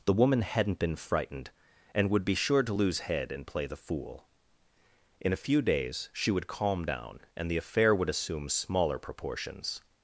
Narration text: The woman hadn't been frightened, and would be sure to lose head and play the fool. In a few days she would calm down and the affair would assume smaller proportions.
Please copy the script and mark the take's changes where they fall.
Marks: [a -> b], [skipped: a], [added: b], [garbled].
The woman hadn't been frightened, and would be sure to lose head and play the fool. In a few days she would calm down and the affair would assume smaller proportions.